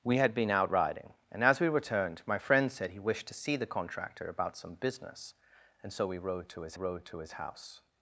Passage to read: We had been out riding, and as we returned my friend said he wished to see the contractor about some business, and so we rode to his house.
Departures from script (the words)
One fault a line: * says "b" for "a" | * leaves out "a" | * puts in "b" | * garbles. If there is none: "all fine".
* puts in "rode to his"